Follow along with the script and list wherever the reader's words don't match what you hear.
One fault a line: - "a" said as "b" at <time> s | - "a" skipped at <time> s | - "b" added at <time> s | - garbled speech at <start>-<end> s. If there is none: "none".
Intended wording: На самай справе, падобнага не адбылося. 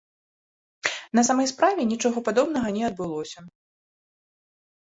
- "нічога" added at 1.9 s